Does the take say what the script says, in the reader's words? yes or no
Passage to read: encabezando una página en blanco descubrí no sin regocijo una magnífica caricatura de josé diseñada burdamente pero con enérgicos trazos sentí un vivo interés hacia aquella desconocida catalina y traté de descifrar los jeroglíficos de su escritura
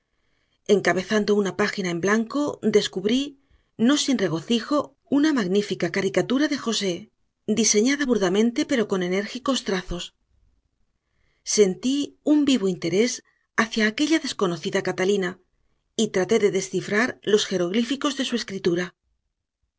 yes